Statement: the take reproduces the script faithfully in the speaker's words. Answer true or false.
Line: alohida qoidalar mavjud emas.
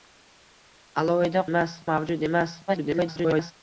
false